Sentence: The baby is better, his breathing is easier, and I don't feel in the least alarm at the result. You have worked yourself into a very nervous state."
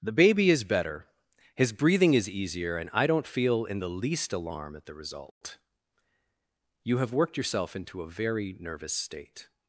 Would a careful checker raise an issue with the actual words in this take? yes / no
no